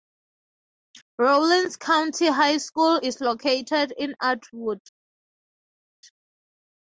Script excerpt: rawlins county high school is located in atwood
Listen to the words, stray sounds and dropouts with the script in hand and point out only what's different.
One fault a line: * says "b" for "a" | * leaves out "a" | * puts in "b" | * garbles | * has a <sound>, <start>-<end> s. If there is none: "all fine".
all fine